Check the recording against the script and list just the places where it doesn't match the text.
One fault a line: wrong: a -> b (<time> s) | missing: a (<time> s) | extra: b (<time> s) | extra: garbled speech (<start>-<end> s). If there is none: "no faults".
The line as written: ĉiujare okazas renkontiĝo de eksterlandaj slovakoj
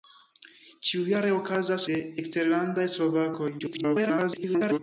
missing: renkontiĝo (1.9 s)
extra: garbled speech (3.6-4.8 s)